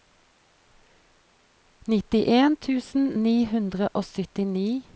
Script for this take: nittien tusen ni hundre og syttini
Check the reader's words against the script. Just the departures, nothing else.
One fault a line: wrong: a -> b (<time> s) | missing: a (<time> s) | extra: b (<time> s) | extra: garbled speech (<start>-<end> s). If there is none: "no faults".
no faults